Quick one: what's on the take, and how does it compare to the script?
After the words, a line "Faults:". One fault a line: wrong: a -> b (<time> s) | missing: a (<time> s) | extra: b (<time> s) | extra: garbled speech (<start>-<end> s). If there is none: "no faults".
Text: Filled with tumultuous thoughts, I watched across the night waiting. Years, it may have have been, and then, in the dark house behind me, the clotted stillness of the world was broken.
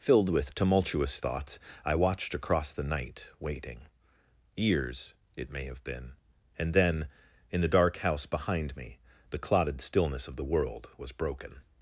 Filled with tumultuous thoughts, I watched across the night waiting. Years, it may have been, and then, in the dark house behind me, the clotted stillness of the world was broken.
Faults:
missing: have (5.8 s)